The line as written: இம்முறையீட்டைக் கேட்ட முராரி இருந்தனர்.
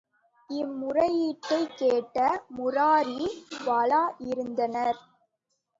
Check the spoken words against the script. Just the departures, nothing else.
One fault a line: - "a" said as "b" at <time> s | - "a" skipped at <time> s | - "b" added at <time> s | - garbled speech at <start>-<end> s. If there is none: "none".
- "வாளா" added at 3.6 s